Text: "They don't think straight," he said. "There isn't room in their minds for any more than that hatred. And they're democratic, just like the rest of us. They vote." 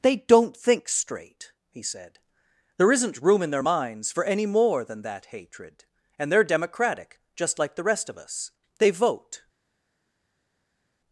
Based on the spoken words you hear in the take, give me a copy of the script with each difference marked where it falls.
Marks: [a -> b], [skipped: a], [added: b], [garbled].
"They don't think straight," he said. "There isn't room in their minds for any more than that hatred. And they're democratic, just like the rest of us. They vote."